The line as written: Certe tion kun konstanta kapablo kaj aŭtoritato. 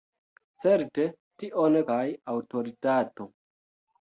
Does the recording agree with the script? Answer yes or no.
no